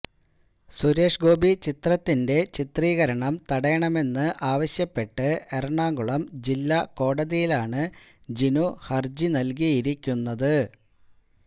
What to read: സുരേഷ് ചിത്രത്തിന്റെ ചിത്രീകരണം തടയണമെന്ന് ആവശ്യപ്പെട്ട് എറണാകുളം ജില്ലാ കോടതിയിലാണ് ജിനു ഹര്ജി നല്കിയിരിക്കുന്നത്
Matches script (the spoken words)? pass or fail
fail